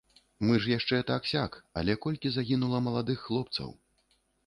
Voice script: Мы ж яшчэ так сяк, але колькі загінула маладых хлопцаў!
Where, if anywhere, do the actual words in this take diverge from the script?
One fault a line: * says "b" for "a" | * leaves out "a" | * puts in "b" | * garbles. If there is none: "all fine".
all fine